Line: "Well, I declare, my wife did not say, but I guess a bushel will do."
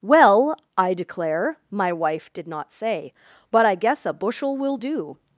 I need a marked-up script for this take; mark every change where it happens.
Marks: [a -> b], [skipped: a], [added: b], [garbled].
"Well, I declare, my wife did not say, but I guess a bushel will do."